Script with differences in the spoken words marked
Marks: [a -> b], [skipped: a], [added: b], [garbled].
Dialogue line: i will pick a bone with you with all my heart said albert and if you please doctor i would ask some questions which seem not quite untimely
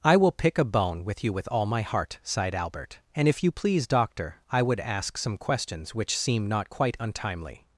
i will pick a bone with you with all my heart [said -> sighed] albert and if you please doctor i would ask some questions which seem not quite untimely